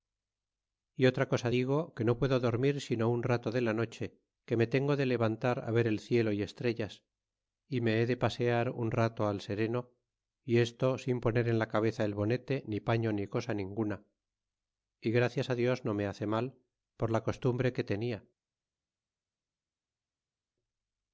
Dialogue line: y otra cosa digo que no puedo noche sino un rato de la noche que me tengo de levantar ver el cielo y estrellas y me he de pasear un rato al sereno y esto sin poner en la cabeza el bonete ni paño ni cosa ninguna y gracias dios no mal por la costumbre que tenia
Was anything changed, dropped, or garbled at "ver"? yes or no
no